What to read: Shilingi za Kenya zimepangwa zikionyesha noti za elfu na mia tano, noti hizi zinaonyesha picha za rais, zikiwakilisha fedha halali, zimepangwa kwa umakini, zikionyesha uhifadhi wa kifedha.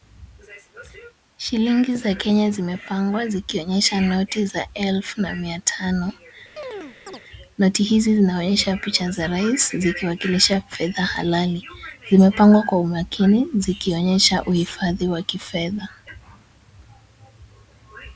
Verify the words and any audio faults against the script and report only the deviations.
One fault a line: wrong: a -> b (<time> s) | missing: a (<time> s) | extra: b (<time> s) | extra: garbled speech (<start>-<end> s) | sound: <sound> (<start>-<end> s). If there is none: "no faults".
sound: chirp (6.6-7.2 s)